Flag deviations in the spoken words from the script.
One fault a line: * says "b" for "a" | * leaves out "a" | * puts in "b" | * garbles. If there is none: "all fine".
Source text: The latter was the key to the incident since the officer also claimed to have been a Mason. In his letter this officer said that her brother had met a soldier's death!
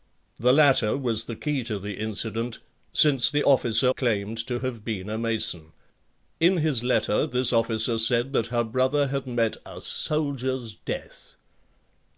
* leaves out "also"